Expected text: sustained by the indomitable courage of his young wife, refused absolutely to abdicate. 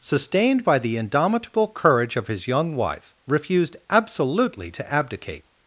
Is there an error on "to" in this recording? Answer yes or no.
no